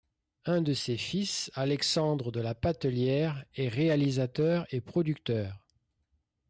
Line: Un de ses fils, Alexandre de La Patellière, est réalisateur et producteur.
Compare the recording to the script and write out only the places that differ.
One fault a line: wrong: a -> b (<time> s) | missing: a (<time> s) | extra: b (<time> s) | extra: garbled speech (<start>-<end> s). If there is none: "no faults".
no faults